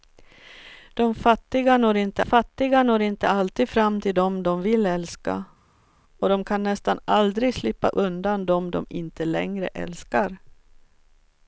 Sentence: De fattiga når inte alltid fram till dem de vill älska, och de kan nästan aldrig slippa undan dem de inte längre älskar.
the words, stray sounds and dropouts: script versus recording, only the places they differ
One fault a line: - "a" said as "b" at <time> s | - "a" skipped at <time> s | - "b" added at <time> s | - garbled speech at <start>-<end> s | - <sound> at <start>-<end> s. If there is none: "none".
- "fattiga når inte" added at 2.2 s